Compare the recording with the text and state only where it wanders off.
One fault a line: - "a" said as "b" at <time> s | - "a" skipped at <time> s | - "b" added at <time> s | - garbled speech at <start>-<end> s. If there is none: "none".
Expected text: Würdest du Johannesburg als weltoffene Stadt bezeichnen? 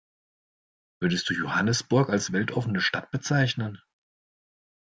none